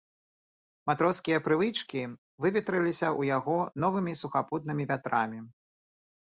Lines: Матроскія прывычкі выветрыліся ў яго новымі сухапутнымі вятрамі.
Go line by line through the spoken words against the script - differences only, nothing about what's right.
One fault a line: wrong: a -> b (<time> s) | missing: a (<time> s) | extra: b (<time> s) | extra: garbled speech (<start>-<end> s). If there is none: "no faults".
no faults